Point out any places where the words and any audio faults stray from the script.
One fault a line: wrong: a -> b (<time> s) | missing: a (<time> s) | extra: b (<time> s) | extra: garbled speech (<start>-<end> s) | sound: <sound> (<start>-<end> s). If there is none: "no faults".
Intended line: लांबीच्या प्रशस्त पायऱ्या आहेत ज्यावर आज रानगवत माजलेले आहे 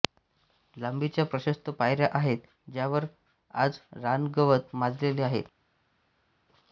no faults